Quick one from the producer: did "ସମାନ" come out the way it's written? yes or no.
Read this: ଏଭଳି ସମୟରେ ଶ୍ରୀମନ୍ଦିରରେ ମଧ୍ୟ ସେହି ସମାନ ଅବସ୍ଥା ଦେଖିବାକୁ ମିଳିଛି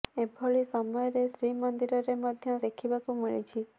no